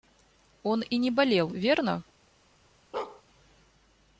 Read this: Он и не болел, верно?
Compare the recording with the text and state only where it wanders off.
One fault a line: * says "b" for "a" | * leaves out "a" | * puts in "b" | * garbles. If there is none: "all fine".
all fine